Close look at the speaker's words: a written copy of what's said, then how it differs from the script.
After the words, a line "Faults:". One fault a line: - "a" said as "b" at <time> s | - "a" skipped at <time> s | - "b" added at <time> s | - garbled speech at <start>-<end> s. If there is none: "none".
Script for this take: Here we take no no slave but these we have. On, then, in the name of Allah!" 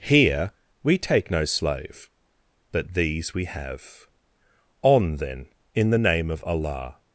Here we take no slave but these we have. On, then, in the name of Allah!"
Faults:
- "no" skipped at 1.4 s